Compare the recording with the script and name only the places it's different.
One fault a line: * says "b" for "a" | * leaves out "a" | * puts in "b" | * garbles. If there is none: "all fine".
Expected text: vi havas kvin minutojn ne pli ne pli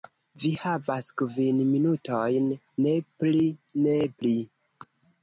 all fine